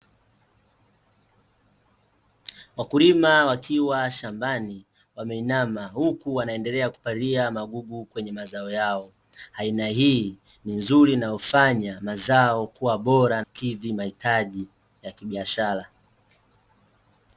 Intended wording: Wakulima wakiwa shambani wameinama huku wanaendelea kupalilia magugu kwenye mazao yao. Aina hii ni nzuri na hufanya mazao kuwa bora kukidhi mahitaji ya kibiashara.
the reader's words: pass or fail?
pass